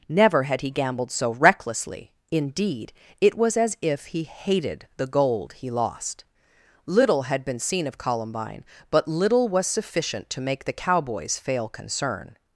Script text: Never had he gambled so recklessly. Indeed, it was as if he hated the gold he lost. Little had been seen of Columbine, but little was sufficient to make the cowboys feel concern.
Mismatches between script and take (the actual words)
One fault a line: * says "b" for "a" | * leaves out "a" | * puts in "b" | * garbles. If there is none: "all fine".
* says "fail" for "feel"